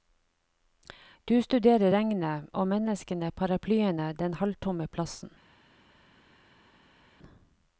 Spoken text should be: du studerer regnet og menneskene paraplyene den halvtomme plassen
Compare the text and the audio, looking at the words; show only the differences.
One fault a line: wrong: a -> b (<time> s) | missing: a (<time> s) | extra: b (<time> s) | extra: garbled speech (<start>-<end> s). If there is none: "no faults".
no faults